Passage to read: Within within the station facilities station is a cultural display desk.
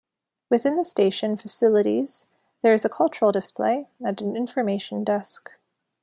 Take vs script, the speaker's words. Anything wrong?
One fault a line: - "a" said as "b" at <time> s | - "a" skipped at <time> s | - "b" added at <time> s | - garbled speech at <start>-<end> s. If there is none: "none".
- "within" skipped at 0.8 s
- "station" said as "there" at 2.6 s
- "and an information" added at 4.0 s